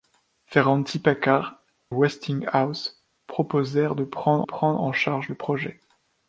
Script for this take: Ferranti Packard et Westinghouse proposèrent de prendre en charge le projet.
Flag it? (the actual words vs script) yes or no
yes